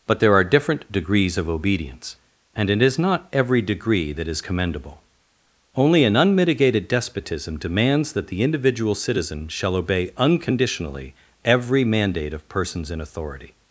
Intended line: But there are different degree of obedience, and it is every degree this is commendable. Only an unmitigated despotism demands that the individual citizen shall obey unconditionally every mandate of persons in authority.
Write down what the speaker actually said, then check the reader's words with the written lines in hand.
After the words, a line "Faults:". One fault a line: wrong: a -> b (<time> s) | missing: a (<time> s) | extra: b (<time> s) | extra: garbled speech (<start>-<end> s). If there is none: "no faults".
But there are different degrees of obedience, and it is not every degree that is commendable. Only an unmitigated despotism demands that the individual citizen shall obey unconditionally every mandate of persons in authority.
Faults:
wrong: degree -> degrees (0.9 s)
extra: not (3.0 s)
wrong: this -> that (4.1 s)